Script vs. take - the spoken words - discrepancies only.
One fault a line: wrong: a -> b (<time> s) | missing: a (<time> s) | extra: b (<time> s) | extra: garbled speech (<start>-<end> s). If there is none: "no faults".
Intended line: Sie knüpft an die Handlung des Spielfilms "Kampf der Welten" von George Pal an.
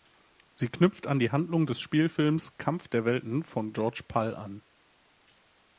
no faults